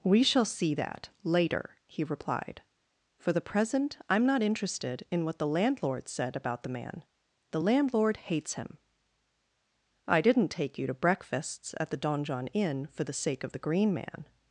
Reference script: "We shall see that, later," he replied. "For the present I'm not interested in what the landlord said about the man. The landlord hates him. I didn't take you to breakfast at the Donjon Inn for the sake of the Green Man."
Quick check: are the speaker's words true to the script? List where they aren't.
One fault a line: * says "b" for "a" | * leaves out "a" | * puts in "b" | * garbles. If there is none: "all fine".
* says "breakfasts" for "breakfast"